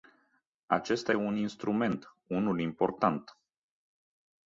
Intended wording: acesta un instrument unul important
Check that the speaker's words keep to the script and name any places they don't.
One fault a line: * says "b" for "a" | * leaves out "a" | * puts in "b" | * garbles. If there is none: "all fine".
all fine